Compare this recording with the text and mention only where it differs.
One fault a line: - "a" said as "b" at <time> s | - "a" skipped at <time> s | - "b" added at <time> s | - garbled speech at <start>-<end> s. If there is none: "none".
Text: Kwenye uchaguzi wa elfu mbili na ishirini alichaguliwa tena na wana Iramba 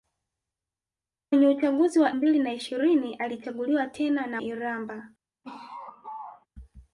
- "elfu" skipped at 2.1 s
- "wana" skipped at 4.4 s